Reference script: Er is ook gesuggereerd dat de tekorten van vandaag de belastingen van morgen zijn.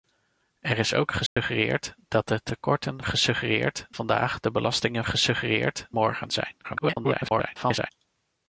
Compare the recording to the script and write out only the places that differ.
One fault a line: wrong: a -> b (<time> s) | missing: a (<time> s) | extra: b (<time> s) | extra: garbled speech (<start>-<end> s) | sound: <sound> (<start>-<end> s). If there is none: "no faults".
sound: dropout (1.3-1.4 s)
wrong: van -> gesuggereerd (3.0 s)
wrong: van -> gesuggereerd (5.0 s)
extra: garbled speech (6.6-7.9 s)